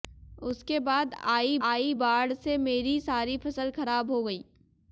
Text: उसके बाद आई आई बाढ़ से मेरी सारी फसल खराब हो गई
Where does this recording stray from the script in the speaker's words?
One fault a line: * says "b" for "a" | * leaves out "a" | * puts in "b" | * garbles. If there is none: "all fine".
all fine